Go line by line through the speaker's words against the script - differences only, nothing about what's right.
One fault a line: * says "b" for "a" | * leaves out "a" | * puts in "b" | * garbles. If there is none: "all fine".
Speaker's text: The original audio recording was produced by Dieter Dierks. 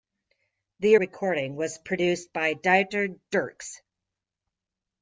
* leaves out "original audio"